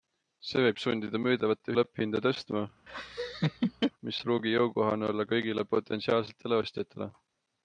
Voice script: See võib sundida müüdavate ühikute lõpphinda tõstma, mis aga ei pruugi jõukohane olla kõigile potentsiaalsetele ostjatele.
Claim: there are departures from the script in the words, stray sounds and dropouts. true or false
true